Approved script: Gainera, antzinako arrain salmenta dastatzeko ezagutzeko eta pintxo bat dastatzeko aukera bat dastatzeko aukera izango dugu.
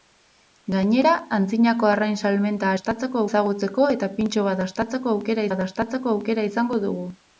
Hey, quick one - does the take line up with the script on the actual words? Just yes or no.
yes